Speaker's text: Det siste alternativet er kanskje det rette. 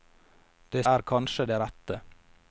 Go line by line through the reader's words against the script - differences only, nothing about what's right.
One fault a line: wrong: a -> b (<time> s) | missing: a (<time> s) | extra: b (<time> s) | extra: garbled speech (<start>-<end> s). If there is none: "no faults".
missing: siste alternativet (0.8 s)